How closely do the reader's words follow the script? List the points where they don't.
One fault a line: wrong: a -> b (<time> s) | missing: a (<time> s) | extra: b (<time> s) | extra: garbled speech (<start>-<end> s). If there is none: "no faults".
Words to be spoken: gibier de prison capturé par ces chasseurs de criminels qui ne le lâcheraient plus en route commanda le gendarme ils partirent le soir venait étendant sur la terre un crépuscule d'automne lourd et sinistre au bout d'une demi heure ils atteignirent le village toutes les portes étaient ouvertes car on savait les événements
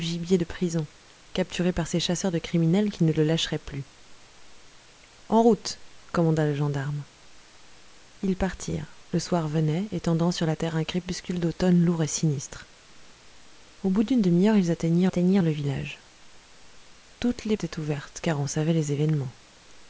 extra: atteignirent (15.1 s)
missing: portes (17.6 s)